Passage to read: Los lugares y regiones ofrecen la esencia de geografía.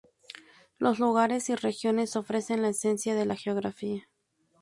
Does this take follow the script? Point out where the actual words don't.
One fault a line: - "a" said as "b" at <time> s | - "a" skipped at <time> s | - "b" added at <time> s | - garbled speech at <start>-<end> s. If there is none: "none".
- "la" added at 3.3 s